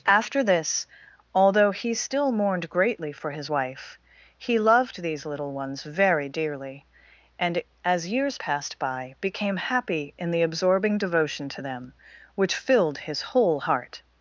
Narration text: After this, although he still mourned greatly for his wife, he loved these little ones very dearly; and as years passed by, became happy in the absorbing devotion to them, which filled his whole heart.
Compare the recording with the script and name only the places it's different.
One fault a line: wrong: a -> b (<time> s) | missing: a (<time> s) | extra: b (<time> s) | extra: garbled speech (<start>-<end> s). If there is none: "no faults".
no faults